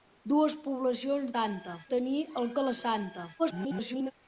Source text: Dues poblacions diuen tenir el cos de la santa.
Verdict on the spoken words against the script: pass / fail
fail